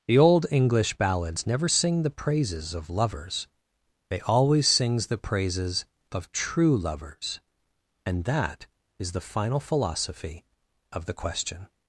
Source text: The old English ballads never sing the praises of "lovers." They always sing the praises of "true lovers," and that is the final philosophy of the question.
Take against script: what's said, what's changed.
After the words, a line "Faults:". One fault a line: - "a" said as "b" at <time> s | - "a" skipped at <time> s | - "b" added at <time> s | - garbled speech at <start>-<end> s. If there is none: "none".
The old English ballads never sing the praises of "lovers." They always sings the praises of "true lovers," and that is the final philosophy of the question.
Faults:
- "sing" said as "sings" at 4.7 s